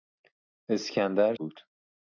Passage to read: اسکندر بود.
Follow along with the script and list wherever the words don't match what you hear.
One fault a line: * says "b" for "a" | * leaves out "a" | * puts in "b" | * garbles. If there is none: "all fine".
all fine